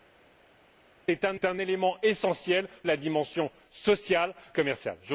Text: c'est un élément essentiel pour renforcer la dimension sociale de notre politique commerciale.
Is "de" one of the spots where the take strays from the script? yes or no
yes